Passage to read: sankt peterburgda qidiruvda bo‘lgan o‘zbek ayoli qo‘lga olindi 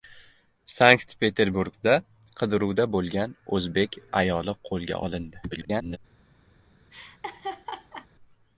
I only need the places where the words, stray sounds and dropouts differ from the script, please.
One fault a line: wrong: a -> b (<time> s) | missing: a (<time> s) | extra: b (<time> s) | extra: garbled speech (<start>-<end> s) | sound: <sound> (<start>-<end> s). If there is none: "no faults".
extra: garbled speech (5.5-6.0 s)
sound: laugh (6.9-8.1 s)